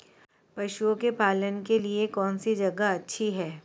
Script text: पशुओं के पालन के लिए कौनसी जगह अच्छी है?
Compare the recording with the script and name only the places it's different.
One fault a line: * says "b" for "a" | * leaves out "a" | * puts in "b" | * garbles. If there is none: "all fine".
all fine